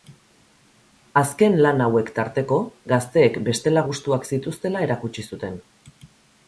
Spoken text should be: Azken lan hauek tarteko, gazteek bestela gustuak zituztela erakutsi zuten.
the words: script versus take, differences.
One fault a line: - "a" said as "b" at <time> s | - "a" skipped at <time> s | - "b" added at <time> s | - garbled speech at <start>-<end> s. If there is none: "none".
none